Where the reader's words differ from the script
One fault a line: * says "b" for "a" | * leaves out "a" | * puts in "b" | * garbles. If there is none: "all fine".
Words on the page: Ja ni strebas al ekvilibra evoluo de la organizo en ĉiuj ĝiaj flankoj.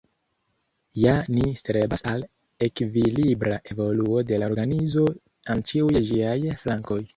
all fine